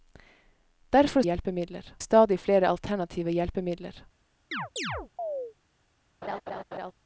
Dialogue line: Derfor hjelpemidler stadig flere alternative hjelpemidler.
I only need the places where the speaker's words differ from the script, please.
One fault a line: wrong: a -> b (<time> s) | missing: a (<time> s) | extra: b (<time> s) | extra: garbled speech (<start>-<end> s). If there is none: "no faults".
no faults